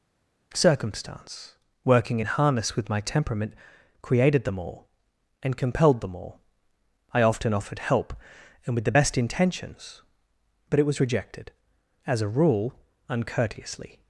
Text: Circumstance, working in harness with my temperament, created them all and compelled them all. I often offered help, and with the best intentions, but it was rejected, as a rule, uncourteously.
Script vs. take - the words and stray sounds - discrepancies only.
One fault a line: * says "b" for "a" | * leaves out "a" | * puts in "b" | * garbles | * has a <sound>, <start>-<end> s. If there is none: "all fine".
all fine